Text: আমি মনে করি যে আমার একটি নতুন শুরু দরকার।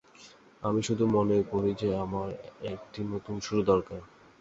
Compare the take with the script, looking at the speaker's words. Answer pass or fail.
fail